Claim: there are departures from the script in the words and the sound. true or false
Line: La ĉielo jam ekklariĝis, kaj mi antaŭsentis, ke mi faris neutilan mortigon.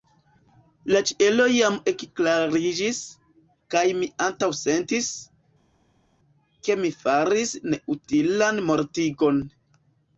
false